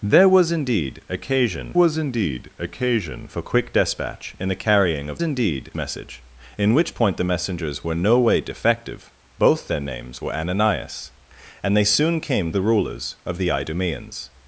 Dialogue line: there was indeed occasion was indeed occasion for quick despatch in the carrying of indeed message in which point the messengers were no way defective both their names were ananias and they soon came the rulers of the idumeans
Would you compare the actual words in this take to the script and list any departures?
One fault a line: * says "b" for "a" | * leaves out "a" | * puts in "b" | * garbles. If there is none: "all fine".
all fine